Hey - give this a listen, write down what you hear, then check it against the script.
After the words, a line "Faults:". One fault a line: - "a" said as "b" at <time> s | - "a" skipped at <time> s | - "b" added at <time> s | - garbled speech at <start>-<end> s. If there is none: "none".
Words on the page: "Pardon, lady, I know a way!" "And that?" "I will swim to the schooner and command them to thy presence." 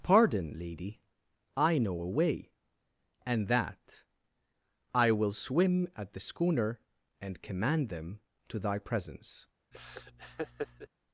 "Pardon, lady, I know a way!" "And that?" "I will swim at the schooner and command them to thy presence."
Faults:
- "to" said as "at" at 6.0 s